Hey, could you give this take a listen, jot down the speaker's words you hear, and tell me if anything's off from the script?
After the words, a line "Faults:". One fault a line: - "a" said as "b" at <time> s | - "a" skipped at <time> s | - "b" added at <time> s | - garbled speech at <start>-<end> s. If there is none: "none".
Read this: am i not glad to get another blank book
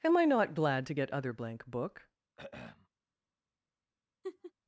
am i not glad to get other blank book
Faults:
- "another" said as "other" at 1.1 s